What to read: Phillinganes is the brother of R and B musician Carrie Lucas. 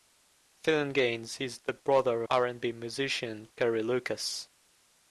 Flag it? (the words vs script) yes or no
yes